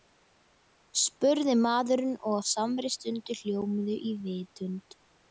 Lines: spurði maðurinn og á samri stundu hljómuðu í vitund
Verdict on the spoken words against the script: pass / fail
pass